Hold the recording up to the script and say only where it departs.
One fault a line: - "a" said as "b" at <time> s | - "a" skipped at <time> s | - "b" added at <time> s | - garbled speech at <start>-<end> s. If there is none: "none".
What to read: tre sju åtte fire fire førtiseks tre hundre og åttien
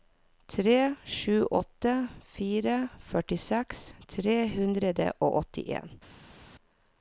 - "fire" skipped at 2.8 s